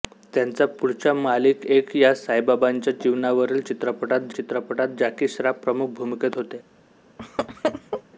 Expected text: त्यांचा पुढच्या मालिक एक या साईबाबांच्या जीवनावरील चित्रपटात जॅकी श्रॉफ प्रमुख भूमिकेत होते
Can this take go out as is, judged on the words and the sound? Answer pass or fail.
fail